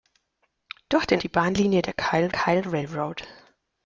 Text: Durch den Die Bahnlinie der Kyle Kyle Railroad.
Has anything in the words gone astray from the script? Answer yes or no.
no